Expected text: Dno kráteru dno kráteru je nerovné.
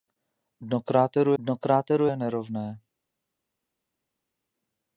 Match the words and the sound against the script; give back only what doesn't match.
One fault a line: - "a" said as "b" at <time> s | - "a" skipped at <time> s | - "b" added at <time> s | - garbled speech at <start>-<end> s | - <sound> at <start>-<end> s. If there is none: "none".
none